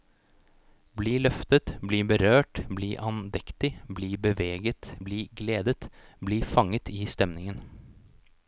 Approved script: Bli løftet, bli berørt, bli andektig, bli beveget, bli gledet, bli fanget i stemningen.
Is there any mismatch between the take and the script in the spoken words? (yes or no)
no